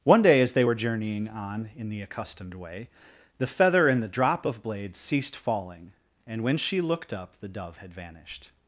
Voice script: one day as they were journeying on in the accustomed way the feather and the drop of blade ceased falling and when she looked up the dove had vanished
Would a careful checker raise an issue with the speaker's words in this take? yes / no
no